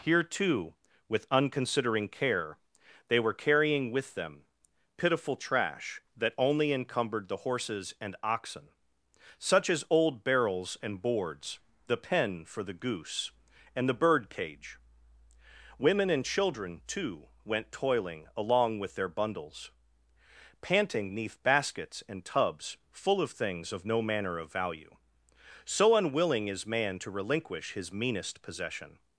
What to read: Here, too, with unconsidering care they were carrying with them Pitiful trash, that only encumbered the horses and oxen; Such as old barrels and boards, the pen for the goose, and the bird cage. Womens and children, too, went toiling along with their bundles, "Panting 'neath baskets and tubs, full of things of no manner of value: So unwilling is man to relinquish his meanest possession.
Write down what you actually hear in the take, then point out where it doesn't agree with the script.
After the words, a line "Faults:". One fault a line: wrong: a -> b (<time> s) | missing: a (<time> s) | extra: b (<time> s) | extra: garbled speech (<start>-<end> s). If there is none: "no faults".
Here, too, with unconsidering care they were carrying with them Pitiful trash, that only encumbered the horses and oxen; Such as old barrels and boards, the pen for the goose, and the bird cage. Women and children, too, went toiling along with their bundles, "Panting 'neath baskets and tubs, full of things of no manner of value: So unwilling is man to relinquish his meanest possession.
Faults:
wrong: Womens -> Women (15.8 s)